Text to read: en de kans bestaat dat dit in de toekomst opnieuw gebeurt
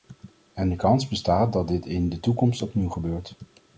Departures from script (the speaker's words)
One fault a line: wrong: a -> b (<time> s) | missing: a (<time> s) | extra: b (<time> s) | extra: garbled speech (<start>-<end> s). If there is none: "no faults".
no faults